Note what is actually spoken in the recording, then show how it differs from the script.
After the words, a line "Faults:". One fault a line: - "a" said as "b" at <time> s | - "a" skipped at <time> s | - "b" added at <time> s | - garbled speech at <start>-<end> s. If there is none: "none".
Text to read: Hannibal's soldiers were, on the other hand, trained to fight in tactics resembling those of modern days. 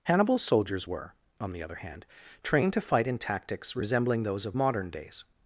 Hannibal's soldiers were, on the other hand, trained to fight in tactics resembling those of modern days.
Faults:
none